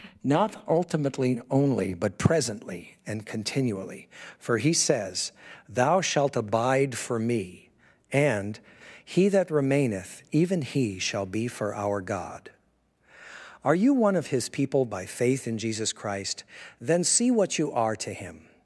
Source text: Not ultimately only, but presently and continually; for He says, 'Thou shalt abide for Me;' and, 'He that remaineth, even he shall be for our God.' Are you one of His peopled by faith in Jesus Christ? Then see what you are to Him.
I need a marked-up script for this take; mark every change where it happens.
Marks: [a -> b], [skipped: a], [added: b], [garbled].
Not ultimately only, but presently and continually; for He says, 'Thou shalt abide for Me;' and, 'He that remaineth, even he shall be for our God.' Are you one of His [peopled -> people] by faith in Jesus Christ? Then see what you are to Him.